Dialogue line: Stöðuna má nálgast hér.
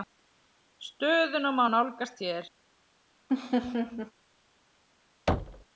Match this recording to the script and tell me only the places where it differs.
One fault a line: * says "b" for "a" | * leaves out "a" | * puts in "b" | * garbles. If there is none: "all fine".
all fine